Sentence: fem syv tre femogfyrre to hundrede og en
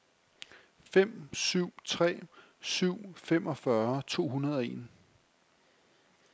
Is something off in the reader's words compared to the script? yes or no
yes